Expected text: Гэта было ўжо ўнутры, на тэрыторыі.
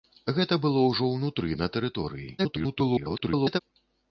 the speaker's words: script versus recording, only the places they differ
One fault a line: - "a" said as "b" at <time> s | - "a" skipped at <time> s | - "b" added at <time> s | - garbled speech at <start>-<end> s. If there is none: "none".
- garbled speech at 2.4-3.6 s